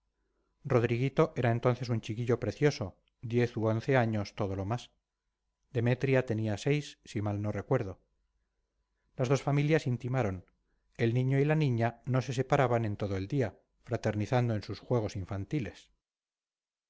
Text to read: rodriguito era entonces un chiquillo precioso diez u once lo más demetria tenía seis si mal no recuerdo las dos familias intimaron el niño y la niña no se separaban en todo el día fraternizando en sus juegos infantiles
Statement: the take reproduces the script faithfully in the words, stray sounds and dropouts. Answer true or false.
false